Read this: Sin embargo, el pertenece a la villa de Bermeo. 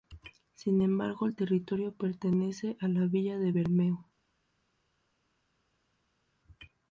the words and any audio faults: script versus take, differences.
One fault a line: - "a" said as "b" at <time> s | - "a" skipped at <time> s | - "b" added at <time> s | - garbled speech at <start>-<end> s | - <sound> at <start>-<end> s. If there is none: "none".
- "territorio" added at 1.3 s